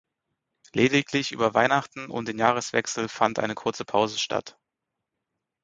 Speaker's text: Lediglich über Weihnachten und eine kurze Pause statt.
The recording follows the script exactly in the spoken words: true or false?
false